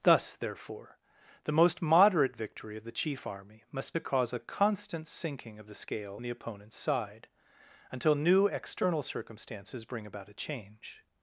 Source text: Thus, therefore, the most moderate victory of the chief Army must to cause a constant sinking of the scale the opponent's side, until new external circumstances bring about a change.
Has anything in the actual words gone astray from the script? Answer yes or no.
no